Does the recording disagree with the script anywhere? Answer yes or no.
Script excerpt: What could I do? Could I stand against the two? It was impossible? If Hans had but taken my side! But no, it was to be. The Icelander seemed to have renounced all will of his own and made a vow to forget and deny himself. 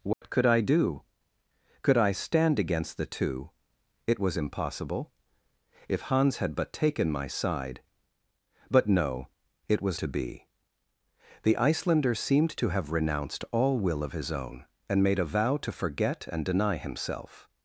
no